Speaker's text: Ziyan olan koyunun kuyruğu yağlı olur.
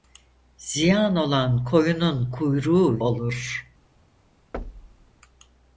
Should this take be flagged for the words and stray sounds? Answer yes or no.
yes